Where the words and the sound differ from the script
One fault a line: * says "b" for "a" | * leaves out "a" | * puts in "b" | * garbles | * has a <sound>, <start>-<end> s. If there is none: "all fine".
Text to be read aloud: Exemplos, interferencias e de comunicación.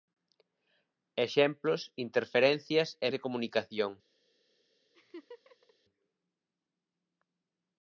* has a laugh, 4.9-5.7 s